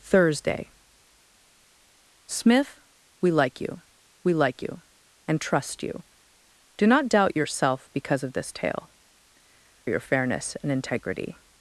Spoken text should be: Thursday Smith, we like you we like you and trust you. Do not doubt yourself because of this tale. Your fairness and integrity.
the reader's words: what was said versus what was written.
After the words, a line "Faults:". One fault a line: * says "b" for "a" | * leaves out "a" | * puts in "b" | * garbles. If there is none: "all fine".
Thursday Smith, we like you we like you and trust you. Do not doubt yourself because of this tale. Your fairness and integrity.
Faults:
all fine